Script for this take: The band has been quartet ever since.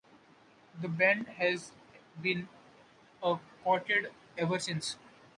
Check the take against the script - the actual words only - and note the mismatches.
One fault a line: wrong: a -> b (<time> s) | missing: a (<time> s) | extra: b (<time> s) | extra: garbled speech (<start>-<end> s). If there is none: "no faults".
extra: a (3.2 s)